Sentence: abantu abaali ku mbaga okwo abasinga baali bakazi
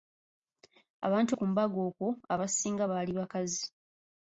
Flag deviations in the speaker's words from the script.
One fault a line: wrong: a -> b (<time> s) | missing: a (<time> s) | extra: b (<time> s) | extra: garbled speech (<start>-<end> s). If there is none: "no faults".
missing: abaali (1.3 s)